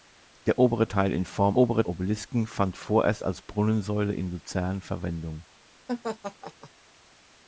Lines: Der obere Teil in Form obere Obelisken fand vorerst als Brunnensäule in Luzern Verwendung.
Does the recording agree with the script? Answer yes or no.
yes